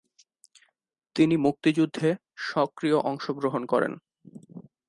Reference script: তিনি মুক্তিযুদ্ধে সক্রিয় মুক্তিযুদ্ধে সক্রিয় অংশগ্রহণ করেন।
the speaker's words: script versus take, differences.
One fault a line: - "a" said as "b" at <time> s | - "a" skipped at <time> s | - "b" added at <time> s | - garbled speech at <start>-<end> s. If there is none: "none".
- "মুক্তিযুদ্ধে সক্রিয়" skipped at 3.0 s